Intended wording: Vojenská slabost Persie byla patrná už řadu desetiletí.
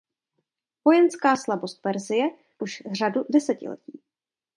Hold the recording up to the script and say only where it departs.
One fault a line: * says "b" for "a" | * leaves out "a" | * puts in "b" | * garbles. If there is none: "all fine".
* leaves out "byla patrná"